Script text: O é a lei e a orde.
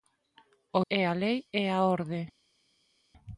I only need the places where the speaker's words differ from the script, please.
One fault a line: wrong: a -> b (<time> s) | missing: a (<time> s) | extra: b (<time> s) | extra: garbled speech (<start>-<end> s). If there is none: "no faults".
no faults